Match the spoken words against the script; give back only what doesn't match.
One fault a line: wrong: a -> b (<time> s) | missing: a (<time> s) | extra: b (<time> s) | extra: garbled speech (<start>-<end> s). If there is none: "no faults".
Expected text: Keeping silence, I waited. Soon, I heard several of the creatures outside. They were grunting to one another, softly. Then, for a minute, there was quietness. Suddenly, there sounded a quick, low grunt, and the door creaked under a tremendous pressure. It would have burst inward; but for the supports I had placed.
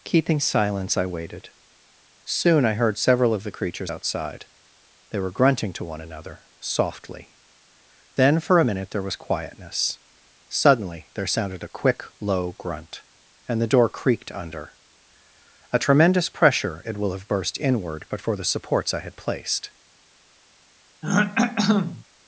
wrong: would -> will (17.0 s)